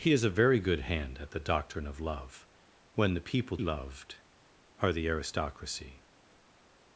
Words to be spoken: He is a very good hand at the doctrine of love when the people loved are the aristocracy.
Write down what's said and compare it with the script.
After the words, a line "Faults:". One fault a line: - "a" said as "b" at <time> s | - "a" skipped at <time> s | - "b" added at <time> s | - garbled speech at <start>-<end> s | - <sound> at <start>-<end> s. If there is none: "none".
He is a very good hand at the doctrine of love when the people loved are the aristocracy.
Faults:
none